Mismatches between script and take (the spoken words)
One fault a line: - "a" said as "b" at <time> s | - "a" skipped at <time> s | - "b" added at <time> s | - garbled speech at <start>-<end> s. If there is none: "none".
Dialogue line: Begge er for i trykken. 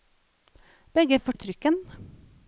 none